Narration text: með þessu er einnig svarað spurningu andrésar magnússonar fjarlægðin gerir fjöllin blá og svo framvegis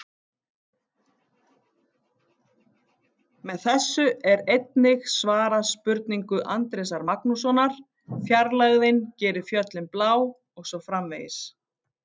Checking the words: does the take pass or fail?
pass